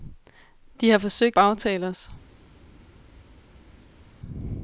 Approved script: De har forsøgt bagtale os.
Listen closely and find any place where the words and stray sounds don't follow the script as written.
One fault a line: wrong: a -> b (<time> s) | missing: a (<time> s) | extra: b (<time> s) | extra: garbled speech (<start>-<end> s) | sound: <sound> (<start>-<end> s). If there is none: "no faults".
no faults